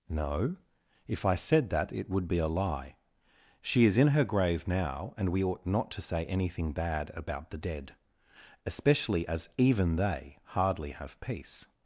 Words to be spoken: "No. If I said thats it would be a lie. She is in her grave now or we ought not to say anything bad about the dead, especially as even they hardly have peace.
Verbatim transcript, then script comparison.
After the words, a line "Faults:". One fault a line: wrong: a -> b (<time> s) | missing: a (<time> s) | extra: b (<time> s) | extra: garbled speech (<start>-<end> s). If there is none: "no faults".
"No. If I said that it would be a lie. She is in her grave now and we ought not to say anything bad about the dead, especially as even they hardly have peace.
Faults:
wrong: thats -> that (1.7 s)
wrong: or -> and (5.2 s)